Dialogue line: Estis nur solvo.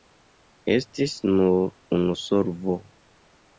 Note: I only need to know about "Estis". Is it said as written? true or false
true